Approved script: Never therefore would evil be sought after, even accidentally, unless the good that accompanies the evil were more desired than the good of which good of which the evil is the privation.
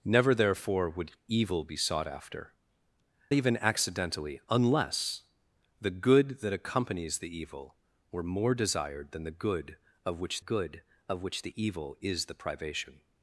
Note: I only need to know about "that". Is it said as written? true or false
true